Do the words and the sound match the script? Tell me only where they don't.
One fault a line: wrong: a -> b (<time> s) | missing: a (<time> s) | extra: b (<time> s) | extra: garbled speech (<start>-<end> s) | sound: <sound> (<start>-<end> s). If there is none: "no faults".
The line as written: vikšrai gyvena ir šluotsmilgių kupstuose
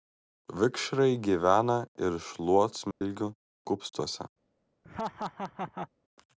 sound: dropout (2.9-3.0 s)
sound: laugh (4.8-5.9 s)